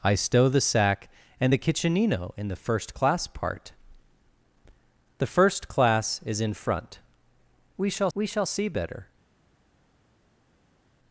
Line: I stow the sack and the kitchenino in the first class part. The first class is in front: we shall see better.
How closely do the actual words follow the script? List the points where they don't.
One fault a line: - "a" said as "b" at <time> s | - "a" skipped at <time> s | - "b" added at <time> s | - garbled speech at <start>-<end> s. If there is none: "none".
- "we shall" added at 8.1 s